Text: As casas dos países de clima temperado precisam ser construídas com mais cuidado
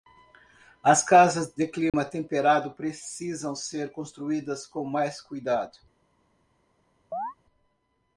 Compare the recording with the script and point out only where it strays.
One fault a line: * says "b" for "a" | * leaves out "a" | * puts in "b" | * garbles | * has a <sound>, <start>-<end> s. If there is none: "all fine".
* leaves out "dos países"
* has a dropout, 1.9-1.9 s
* has a chirp, 7.1-7.3 s